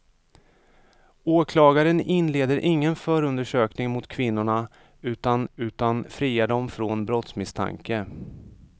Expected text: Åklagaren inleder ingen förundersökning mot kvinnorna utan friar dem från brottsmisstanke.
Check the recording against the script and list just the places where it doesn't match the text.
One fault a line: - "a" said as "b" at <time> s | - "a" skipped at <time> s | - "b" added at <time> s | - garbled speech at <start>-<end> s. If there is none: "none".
- "utan" added at 5.6 s